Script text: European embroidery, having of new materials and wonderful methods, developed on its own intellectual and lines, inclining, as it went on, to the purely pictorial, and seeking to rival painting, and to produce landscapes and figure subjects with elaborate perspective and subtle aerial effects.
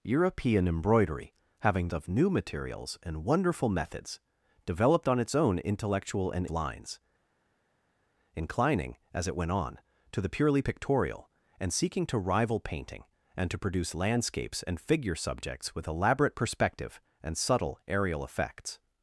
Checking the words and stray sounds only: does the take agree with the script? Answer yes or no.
yes